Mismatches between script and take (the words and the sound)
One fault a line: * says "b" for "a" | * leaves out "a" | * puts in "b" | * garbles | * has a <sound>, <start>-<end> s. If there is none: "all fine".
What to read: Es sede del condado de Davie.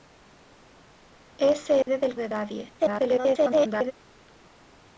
* has a dropout, 1.8-1.9 s
* leaves out "condado"
* garbles